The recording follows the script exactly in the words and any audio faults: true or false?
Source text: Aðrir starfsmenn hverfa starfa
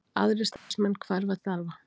false